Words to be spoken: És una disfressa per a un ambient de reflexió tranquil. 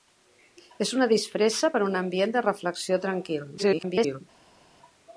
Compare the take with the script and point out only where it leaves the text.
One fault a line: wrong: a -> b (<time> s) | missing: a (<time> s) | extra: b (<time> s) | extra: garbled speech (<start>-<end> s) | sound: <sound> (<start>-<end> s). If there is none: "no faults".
extra: garbled speech (3.6-4.2 s)